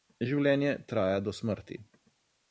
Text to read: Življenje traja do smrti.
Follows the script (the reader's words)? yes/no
yes